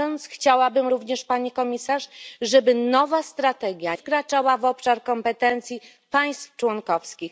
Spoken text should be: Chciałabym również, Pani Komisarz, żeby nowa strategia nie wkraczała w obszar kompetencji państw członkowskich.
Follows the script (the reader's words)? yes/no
no